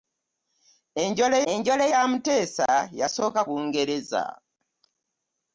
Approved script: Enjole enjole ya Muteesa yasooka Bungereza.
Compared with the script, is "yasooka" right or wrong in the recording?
right